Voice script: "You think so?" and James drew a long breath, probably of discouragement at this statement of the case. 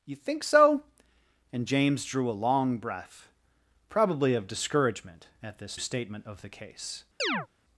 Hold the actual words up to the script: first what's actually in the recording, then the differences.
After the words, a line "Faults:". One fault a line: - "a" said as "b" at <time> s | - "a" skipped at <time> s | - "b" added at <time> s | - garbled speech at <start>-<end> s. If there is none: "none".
"You think so?" and James drew a long breath, probably of discouragement at this statement of the case.
Faults:
none